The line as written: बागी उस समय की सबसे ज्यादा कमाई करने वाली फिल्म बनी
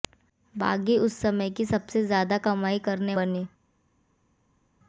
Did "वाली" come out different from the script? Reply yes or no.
yes